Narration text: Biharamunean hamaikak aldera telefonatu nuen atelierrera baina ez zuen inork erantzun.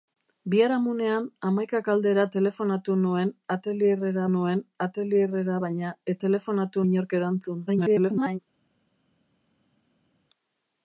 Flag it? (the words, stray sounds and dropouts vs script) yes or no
yes